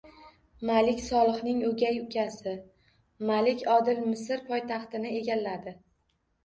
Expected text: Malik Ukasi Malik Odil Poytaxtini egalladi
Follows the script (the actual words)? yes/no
no